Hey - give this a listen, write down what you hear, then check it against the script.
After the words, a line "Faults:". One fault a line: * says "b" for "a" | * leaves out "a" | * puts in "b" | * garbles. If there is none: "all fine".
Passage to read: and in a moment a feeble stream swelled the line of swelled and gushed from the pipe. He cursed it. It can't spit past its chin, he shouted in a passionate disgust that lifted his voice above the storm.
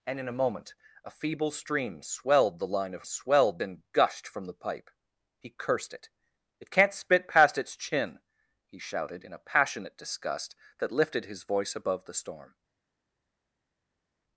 and in a moment a feeble stream swelled the line of swelled and gushed from the pipe. He cursed it. It can't spit past its chin, he shouted in a passionate disgust that lifted his voice above the storm.
Faults:
all fine